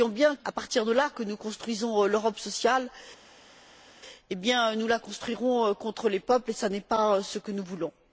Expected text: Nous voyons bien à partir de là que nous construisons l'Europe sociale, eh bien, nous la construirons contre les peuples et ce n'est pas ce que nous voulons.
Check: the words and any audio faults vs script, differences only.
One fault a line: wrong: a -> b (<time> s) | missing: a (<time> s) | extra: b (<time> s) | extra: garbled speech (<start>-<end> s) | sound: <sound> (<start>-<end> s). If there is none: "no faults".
no faults